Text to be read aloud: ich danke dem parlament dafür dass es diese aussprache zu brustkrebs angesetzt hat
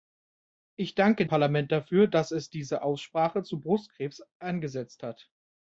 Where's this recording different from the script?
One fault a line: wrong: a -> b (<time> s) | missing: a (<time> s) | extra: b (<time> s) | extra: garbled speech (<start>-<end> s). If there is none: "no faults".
missing: dem (1.3 s)